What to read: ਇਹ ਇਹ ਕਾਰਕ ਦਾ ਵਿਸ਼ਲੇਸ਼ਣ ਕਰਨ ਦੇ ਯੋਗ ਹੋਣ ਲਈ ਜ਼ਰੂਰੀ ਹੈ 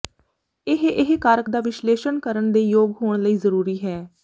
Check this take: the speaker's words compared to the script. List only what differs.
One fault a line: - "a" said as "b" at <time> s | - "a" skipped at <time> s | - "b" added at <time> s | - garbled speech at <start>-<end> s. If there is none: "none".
none